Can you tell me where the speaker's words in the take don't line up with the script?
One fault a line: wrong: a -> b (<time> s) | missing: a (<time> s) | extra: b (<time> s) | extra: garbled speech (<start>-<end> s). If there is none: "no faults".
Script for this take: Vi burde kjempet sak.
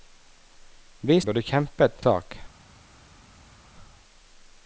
no faults